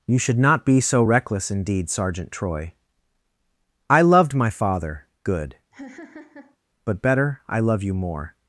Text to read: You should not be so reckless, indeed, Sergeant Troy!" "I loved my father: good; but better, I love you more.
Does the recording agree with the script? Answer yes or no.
yes